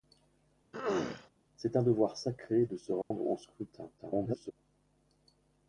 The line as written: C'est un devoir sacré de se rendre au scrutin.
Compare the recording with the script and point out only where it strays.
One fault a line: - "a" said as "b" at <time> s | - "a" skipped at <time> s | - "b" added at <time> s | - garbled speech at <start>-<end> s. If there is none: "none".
- garbled speech at 4.0-4.5 s